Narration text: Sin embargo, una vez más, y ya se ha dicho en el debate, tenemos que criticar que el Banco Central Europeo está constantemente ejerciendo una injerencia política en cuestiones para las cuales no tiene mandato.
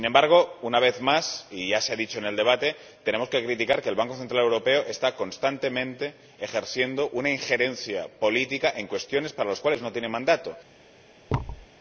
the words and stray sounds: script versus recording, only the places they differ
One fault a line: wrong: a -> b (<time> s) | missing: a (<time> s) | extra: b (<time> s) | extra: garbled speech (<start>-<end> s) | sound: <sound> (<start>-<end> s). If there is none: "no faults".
sound: thud (11.3-11.7 s)